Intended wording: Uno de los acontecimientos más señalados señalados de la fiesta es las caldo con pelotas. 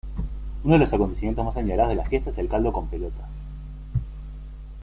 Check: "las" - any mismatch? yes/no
yes